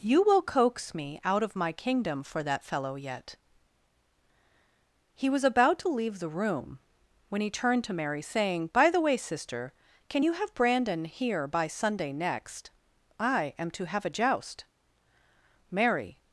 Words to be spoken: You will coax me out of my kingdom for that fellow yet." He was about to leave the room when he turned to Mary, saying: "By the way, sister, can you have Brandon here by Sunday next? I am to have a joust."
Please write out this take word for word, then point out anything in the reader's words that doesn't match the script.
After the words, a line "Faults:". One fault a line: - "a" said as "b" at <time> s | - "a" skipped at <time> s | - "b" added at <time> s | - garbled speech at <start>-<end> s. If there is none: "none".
You will coax me out of my kingdom for that fellow yet." He was about to leave the room when he turned to Mary, saying: "By the way, sister, can you have Brandon here by Sunday next? I am to have a joust." Mary
Faults:
- "Mary" added at 15.7 s